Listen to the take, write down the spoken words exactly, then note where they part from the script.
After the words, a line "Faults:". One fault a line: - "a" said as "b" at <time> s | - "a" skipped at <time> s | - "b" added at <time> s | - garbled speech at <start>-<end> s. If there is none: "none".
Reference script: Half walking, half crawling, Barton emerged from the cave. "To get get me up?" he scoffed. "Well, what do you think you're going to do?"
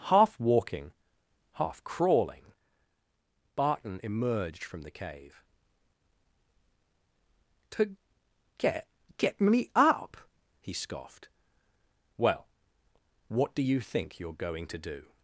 Half walking, half crawling, Barton emerged from the cave. "To get get me up?" he scoffed. "Well, what do you think you're going to do?"
Faults:
none